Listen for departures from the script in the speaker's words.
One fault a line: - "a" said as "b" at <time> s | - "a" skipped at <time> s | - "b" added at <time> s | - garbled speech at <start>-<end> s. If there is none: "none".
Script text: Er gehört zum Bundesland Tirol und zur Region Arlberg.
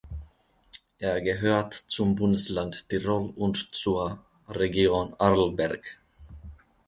none